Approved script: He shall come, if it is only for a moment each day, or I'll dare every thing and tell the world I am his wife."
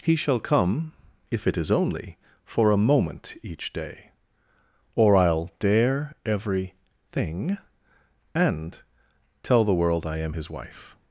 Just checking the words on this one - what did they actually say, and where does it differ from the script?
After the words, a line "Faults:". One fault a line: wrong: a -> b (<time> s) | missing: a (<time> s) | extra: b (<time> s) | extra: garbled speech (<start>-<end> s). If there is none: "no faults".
He shall come, if it is only for a moment each day, or I'll dare every thing and tell the world I am his wife."
Faults:
no faults